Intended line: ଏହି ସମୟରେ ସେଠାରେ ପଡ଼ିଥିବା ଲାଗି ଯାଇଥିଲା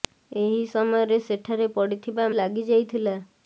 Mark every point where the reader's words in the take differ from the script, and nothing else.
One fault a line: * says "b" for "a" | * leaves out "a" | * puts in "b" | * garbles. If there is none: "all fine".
all fine